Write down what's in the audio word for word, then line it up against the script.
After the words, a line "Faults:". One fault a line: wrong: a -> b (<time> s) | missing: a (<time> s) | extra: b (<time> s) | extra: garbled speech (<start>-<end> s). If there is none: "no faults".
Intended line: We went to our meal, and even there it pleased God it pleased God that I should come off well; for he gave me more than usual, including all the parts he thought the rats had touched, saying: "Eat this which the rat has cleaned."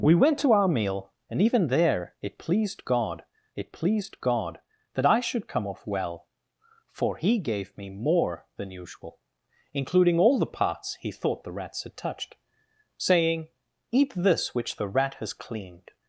We went to our meal, and even there it pleased God it pleased God that I should come off well; for he gave me more than usual, including all the parts he thought the rats had touched, saying: "Eat this which the rat has cleaned."
Faults:
no faults